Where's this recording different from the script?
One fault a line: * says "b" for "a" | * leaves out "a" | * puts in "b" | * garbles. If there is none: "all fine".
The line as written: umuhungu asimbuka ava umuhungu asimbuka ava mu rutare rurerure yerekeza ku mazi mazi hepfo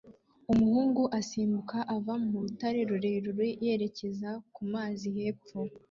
* leaves out "umuhungu asimbuka ava"
* leaves out "mazi"